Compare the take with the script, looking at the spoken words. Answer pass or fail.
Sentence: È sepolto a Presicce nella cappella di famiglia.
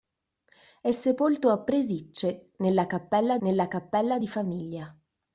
fail